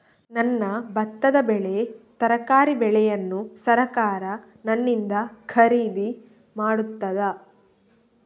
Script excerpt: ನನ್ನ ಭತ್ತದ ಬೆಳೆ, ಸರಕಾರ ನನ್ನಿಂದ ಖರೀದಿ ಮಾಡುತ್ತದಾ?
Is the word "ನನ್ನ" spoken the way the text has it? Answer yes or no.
yes